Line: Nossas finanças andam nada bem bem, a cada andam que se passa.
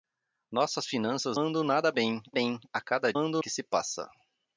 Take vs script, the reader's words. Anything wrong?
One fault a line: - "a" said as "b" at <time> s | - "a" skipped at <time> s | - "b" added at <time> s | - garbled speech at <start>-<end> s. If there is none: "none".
none